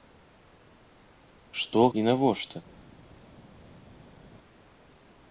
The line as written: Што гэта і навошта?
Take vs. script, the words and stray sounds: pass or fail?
fail